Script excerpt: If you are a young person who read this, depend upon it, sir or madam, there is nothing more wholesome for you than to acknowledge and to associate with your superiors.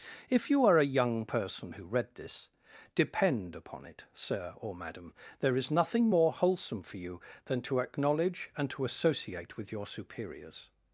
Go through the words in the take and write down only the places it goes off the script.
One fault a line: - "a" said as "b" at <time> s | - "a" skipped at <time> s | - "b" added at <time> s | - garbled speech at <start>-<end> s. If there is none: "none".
none